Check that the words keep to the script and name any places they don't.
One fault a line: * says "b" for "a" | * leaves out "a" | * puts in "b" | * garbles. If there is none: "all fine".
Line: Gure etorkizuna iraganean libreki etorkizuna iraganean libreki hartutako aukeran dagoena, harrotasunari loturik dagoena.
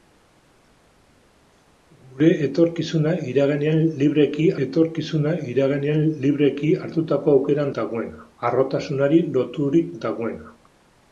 all fine